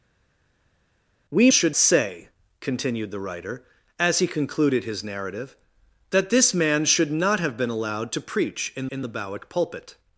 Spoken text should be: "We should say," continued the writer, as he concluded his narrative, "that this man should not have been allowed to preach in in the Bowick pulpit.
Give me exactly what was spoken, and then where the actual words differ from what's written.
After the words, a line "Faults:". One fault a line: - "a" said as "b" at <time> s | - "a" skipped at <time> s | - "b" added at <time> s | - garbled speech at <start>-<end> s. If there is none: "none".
"We should say," continued the writer, as he concluded his narrative, "that this man should not have been allowed to preach in in the Bowick pulpit.
Faults:
none